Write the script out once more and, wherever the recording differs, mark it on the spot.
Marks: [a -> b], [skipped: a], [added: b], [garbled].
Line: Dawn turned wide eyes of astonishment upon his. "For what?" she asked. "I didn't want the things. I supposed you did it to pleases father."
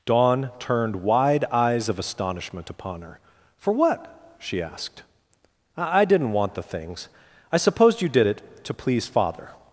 Dawn turned wide eyes of astonishment upon [his. -> her] "For what?" she asked. "I didn't want the things. I supposed you did it to [pleases -> please] father."